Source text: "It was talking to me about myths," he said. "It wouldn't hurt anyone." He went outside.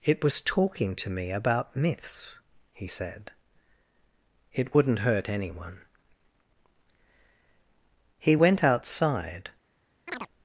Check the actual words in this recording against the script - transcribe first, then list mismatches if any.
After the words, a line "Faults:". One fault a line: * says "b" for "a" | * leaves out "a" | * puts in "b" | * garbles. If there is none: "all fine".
"It was talking to me about myths," he said. "It wouldn't hurt anyone." He went outside.
Faults:
all fine